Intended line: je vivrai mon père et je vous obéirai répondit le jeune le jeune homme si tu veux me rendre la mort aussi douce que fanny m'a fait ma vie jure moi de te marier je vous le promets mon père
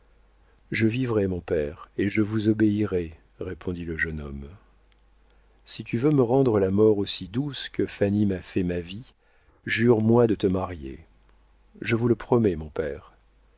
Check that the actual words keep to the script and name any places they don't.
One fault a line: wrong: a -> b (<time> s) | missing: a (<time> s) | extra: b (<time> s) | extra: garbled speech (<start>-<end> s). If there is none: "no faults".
missing: le jeune (4.2 s)